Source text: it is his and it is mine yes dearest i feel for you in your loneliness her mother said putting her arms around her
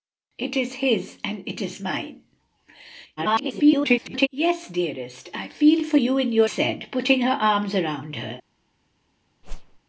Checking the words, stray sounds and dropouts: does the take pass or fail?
fail